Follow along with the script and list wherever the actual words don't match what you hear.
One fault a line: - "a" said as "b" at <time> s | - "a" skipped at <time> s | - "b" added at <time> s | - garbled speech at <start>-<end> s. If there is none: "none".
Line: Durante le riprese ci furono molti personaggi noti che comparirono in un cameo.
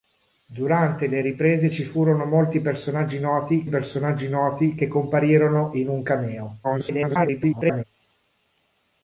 - "personaggi noti" added at 3.7 s
- garbled speech at 6.6-7.8 s